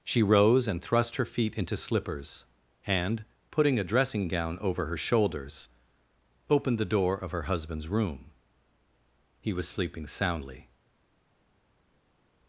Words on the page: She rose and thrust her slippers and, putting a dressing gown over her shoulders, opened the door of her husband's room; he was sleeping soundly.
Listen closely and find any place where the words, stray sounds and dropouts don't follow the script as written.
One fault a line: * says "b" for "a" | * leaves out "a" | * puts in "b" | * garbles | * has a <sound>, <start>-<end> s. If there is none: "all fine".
* puts in "feet into"